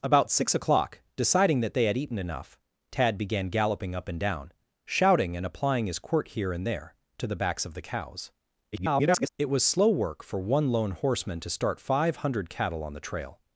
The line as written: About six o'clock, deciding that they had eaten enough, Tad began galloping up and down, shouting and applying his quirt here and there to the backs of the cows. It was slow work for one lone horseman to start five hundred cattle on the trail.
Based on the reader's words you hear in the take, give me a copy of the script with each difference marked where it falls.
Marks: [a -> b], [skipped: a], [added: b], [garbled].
About six o'clock, deciding that they had eaten enough, Tad began galloping up and down, shouting and applying his quirt here and there to the backs of the cows. [garbled] It was slow work for one lone horseman to start five hundred cattle on the trail.